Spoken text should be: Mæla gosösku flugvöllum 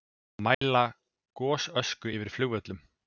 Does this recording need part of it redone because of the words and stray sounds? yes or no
yes